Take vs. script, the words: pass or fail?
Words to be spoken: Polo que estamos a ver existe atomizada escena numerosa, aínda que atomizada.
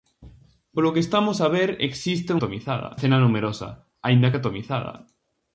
pass